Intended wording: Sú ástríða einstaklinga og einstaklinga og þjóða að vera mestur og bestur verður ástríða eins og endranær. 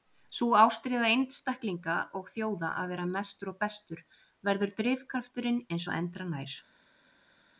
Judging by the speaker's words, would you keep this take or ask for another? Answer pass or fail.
fail